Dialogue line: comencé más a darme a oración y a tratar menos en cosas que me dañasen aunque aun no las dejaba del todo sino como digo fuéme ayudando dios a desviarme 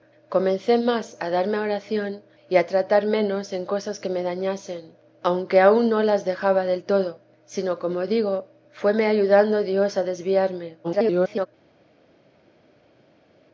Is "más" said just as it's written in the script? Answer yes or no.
yes